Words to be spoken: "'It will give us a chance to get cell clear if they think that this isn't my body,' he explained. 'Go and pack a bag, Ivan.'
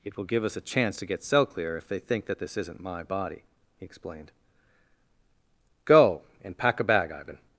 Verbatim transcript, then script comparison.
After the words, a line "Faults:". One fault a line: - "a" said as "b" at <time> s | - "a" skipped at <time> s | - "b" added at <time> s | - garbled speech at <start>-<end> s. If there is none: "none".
"'It will give us a chance to get cell clear if they think that this isn't my body,' he explained. 'Go and pack a bag, Ivan.'
Faults:
none